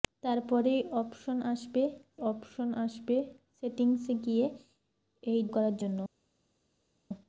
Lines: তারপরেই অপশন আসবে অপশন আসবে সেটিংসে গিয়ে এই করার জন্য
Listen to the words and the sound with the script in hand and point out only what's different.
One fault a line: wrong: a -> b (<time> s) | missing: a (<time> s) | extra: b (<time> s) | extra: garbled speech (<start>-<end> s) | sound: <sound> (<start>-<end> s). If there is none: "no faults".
no faults